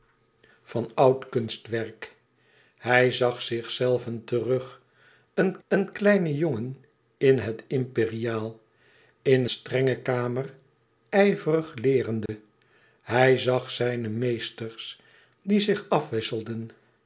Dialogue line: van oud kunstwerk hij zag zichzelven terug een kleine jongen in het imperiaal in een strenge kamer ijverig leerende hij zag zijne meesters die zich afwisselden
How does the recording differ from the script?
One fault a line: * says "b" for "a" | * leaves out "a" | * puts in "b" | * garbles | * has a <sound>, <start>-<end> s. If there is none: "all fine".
* puts in "een"
* leaves out "een"
* has a dropout, 12.3-12.3 s